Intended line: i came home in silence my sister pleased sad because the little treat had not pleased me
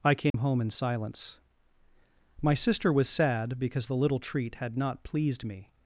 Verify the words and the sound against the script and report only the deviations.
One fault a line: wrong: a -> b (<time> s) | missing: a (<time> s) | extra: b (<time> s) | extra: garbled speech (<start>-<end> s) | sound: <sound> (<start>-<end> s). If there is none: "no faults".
sound: dropout (0.3-0.3 s)
wrong: pleased -> was (2.9 s)